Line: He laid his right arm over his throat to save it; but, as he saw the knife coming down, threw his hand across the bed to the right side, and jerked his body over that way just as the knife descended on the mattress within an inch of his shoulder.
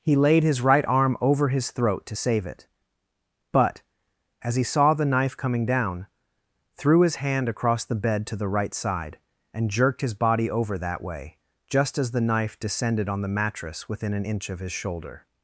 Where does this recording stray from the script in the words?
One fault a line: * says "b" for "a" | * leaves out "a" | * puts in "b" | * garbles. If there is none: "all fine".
all fine